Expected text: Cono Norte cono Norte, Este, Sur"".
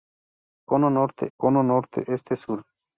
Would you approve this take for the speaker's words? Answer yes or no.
yes